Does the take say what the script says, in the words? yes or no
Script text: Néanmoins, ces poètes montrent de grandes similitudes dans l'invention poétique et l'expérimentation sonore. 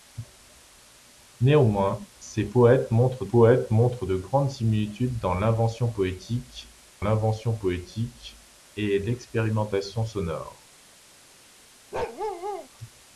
no